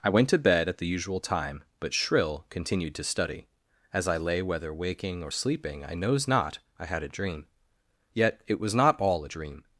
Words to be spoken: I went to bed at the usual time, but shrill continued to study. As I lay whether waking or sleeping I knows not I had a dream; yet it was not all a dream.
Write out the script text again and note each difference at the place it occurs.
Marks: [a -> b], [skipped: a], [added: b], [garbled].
I went to bed at the usual time, but shrill continued to study. As I lay whether waking or sleeping I knows not I had a dream; yet it was not all a dream.